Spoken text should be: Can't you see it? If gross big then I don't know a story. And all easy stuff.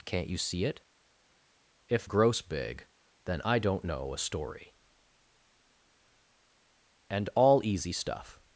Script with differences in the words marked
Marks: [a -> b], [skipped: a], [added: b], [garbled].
Can't you see it? If gross big then I don't know a story. And all easy stuff.